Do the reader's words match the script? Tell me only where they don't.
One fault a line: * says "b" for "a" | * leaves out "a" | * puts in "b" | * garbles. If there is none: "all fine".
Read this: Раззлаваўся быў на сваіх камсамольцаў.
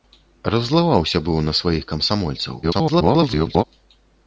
* garbles